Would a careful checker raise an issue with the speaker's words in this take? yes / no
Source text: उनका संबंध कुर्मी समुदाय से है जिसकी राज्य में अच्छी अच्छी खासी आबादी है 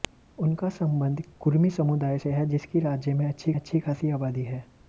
no